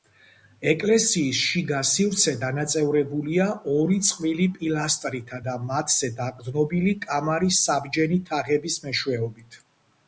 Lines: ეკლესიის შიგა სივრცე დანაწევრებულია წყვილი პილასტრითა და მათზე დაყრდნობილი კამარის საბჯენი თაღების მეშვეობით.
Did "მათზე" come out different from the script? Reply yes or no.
no